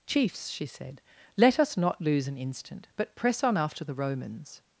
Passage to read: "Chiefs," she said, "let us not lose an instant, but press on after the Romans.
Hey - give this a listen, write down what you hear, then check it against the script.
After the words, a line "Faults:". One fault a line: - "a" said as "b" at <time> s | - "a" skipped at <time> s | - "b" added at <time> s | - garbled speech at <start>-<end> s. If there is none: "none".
"Chiefs," she said, "let us not lose an instant, but press on after the Romans.
Faults:
none